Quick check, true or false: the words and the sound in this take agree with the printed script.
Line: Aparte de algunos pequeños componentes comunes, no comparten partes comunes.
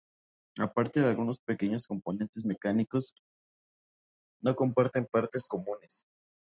false